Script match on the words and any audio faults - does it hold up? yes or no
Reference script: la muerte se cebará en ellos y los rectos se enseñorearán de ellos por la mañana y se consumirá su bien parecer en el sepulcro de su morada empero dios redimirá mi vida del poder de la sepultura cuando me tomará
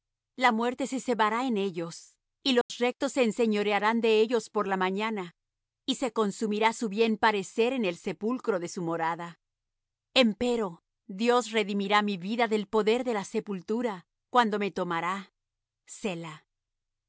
no